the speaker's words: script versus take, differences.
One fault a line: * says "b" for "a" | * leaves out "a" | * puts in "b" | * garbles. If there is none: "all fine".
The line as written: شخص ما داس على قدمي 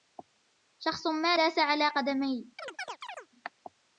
all fine